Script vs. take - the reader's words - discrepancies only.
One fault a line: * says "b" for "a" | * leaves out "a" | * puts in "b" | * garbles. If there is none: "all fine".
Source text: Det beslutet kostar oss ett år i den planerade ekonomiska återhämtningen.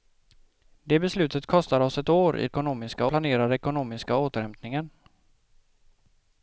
* says "ekonomiska" for "den"